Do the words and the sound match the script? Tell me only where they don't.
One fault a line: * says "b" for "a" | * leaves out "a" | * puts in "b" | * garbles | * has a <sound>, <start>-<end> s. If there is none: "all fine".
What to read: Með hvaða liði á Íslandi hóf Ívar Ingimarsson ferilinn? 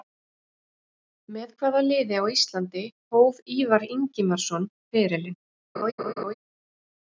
* has a laugh, 5.7-6.3 s